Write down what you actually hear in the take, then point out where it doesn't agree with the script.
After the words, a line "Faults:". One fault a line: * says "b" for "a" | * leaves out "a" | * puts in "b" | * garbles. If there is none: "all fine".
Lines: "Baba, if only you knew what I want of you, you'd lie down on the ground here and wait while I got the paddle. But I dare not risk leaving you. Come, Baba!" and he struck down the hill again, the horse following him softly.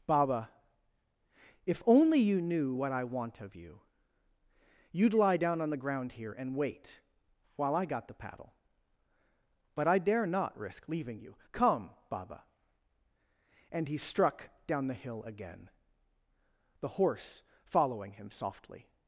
"Baba, if only you knew what I want of you, you'd lie down on the ground here and wait while I got the paddle. But I dare not risk leaving you. Come, Baba!" and he struck down the hill again, the horse following him softly.
Faults:
all fine